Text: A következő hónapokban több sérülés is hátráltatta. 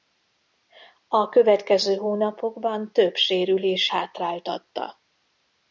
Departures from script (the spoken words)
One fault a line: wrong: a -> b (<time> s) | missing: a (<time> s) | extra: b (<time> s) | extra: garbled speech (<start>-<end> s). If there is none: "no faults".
missing: is (3.9 s)